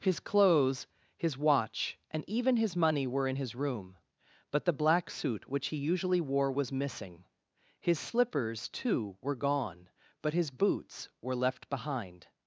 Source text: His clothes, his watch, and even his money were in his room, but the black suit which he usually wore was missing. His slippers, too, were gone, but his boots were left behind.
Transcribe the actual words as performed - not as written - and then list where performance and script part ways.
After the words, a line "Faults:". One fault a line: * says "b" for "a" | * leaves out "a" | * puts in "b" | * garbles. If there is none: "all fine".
His clothes, his watch, and even his money were in his room, but the black suit which he usually wore was missing. His slippers, too, were gone, but his boots were left behind.
Faults:
all fine